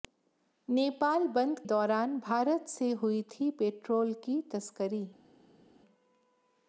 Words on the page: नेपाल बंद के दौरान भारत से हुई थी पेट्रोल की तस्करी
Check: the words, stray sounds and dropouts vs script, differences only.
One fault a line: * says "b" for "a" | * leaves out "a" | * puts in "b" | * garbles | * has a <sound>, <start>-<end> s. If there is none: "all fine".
* leaves out "के"